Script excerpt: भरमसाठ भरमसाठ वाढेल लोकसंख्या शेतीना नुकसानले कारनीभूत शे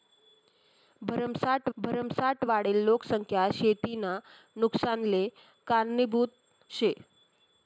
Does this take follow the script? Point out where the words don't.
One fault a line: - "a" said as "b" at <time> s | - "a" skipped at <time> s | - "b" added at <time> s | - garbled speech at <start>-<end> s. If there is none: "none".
none